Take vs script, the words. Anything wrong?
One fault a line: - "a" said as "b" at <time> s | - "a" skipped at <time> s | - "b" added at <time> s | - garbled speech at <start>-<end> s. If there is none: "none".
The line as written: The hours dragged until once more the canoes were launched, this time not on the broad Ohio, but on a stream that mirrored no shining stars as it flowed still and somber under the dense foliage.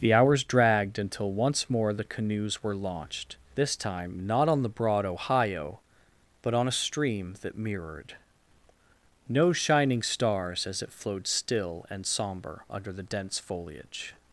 none